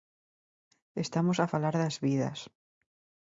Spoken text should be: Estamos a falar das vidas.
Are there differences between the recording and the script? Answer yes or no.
no